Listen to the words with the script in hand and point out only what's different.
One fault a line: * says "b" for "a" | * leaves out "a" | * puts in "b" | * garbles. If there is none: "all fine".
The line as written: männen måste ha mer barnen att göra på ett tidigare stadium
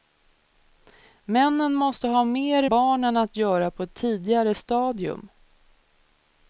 all fine